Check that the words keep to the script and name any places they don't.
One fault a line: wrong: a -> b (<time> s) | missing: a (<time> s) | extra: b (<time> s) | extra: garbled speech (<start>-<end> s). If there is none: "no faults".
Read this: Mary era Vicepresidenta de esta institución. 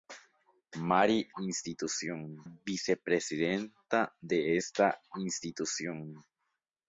wrong: era -> institución (1.4 s)